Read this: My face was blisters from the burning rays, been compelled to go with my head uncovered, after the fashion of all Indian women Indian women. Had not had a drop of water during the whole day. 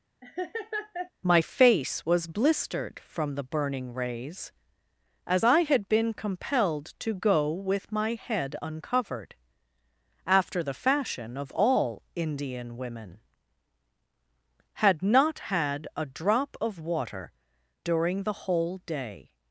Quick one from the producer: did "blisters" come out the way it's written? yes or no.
no